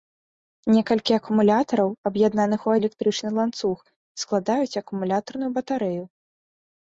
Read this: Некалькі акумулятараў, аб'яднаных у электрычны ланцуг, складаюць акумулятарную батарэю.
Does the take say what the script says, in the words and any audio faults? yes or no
yes